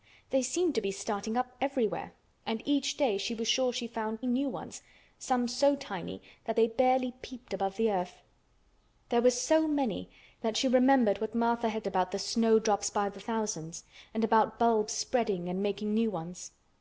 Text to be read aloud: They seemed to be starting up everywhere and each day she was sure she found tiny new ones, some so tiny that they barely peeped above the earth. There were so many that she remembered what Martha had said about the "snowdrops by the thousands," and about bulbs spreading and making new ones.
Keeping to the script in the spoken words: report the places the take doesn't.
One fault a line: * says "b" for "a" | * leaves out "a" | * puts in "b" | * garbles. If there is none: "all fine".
* leaves out "tiny"
* leaves out "said"